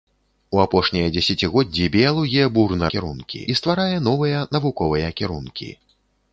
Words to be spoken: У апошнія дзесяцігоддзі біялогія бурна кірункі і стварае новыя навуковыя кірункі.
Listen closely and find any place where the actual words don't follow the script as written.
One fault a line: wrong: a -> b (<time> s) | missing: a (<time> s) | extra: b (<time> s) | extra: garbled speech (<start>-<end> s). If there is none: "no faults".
no faults